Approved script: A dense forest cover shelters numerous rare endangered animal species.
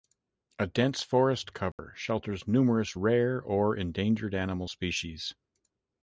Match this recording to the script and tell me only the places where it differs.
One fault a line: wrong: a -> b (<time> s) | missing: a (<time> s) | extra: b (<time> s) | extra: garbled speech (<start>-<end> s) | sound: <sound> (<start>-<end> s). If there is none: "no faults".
sound: dropout (1.7-1.8 s)
extra: or (3.4 s)